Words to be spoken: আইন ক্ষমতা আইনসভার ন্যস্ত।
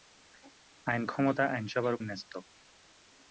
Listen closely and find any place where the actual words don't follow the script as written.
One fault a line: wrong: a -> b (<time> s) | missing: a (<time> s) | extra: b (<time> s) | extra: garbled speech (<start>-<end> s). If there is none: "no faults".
no faults